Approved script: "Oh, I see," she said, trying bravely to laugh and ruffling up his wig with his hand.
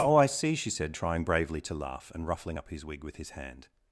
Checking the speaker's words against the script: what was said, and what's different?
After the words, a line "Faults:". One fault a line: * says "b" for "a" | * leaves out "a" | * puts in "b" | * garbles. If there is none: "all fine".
"Oh, I see," she said, trying bravely to laugh and ruffling up his wig with his hand.
Faults:
all fine